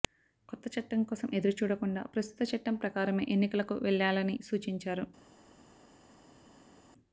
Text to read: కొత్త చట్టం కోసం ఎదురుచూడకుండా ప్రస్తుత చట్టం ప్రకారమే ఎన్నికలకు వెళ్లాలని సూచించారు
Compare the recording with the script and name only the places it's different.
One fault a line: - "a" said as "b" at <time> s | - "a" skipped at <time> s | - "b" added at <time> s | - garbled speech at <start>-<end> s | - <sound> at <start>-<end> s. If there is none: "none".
none